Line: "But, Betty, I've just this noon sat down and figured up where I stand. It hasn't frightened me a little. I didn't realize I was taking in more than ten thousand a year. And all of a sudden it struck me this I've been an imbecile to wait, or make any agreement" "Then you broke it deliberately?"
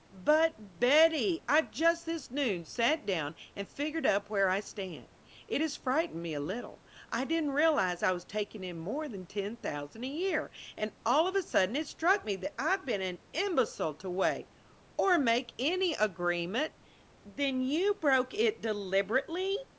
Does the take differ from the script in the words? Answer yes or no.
yes